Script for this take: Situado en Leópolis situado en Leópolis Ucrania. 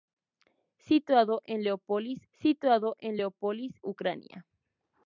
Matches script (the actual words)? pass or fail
pass